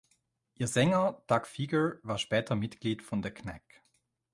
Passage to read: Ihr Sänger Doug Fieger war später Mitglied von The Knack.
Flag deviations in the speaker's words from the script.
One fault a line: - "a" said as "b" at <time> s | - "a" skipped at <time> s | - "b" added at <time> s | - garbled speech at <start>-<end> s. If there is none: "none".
none